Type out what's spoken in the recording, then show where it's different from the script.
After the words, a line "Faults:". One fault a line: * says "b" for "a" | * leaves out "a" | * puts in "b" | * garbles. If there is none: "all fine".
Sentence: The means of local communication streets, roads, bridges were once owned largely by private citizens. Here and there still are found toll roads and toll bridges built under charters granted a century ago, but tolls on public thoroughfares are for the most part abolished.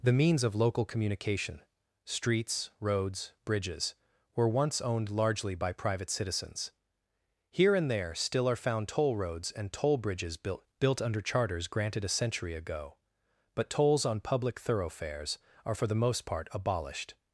The means of local communication streets, roads, bridges were once owned largely by private citizens. Here and there still are found toll roads and toll bridges built built under charters granted a century ago, but tolls on public thoroughfares are for the most part abolished.
Faults:
* puts in "built"